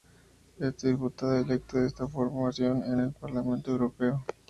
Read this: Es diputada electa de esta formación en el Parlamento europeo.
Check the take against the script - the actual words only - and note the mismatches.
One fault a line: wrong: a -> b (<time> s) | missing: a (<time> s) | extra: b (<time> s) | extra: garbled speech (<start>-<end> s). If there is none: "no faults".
no faults